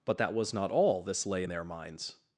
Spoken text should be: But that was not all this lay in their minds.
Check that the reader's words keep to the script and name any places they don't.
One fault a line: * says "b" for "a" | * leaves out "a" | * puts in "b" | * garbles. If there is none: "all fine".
all fine